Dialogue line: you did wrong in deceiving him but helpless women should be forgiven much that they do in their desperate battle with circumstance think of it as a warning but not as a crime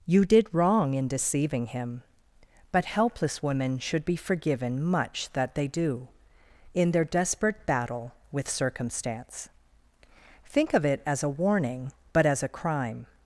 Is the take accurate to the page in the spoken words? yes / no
no